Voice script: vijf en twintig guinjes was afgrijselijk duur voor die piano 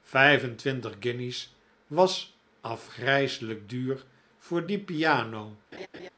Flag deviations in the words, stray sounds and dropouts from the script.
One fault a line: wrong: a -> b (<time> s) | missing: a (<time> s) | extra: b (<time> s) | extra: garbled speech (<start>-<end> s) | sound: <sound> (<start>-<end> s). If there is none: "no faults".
sound: laugh (5.7-6.1 s)